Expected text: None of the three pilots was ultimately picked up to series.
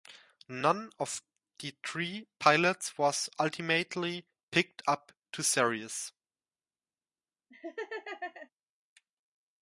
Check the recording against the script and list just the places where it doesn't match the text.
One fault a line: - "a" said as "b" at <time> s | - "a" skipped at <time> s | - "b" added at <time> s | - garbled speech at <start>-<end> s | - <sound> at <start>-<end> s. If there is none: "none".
- laugh at 7.5-8.5 s